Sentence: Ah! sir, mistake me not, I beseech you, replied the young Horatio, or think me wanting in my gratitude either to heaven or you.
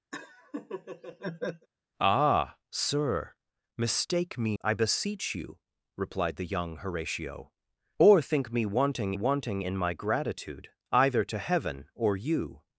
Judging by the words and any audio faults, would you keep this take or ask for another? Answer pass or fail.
fail